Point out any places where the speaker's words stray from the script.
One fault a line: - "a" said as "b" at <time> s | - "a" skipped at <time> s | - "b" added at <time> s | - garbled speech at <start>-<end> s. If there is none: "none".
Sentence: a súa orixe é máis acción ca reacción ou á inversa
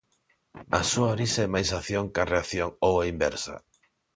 none